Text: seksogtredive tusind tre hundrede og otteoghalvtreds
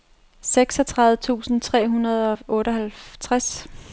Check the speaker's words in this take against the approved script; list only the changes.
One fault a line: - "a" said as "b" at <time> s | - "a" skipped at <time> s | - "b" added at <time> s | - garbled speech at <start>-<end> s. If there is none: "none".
none